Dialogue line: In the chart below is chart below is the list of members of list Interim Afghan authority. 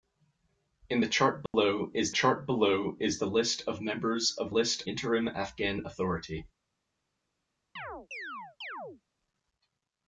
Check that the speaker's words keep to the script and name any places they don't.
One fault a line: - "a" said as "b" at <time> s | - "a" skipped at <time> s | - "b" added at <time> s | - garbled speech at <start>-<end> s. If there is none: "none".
none